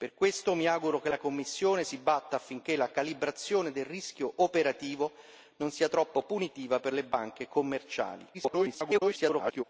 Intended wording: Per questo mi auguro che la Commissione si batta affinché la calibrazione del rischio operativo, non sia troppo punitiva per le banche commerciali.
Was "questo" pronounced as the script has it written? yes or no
yes